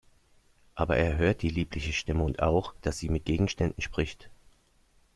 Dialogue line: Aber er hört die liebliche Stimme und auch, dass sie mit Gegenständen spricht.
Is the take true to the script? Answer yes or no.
yes